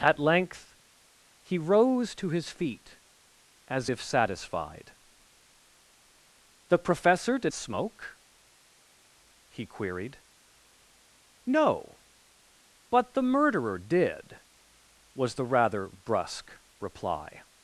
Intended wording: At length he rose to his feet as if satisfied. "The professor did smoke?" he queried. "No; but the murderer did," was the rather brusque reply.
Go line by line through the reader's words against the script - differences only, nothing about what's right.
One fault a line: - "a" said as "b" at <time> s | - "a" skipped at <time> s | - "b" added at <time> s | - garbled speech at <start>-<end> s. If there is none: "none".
none